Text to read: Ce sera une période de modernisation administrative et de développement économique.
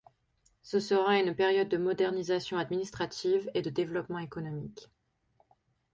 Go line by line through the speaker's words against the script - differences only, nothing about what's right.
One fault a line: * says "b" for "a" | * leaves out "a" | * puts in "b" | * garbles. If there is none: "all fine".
all fine